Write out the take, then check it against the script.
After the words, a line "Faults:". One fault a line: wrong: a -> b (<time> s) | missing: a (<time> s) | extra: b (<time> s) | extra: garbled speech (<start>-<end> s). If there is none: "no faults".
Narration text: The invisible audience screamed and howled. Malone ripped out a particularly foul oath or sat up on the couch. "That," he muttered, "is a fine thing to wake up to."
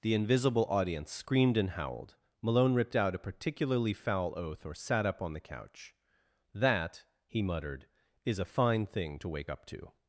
The invisible audience screamed and howled. Malone ripped out a particularly foul oath or sat up on the couch. "That," he muttered, "is a fine thing to wake up to."
Faults:
no faults